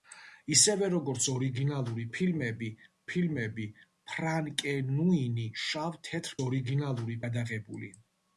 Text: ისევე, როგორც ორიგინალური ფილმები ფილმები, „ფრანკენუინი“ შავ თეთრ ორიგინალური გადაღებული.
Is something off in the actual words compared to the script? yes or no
no